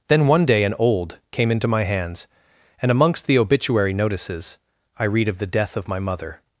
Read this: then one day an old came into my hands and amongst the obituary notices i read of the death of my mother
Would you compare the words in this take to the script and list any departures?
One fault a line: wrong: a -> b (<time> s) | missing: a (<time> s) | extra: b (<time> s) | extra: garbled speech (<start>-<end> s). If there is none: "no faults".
no faults